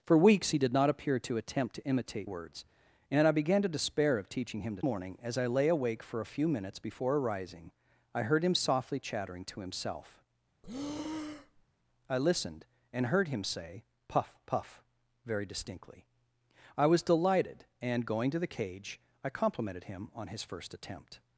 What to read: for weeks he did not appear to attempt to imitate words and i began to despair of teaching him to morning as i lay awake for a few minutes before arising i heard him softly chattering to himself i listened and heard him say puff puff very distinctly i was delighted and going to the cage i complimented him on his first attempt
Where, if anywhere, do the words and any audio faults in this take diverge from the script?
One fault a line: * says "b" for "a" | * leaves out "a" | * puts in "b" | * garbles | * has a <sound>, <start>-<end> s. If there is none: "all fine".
* has a breath, 10.6-11.7 s